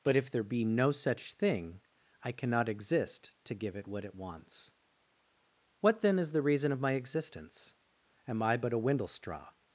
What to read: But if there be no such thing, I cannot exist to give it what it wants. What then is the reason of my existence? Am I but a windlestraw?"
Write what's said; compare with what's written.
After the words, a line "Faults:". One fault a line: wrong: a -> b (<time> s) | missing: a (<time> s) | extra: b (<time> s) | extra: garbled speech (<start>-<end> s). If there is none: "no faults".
But if there be no such thing, I cannot exist to give it what it wants. What then is the reason of my existence? Am I but a windlestraw?"
Faults:
no faults